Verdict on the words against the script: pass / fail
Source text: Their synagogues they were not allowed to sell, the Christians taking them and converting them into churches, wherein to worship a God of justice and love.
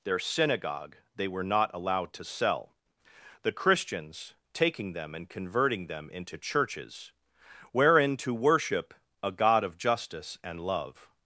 fail